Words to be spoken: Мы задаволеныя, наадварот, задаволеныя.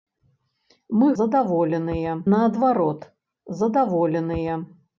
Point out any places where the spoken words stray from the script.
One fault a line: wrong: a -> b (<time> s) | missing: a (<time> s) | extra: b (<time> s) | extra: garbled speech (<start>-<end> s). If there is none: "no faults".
no faults